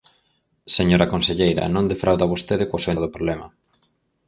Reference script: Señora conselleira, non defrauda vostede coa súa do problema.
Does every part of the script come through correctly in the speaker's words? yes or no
yes